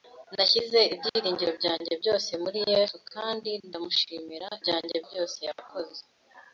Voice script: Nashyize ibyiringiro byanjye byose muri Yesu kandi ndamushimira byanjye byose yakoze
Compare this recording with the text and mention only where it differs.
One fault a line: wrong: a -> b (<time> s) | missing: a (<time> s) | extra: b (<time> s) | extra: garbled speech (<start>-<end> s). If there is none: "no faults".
no faults